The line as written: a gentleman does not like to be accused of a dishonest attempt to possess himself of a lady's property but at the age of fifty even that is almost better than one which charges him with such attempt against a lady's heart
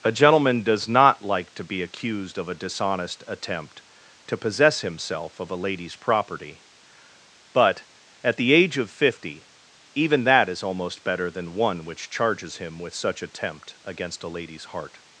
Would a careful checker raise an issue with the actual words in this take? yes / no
no